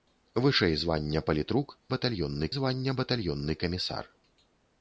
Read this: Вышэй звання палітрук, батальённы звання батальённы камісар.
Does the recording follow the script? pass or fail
pass